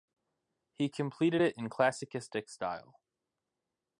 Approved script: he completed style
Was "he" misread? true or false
false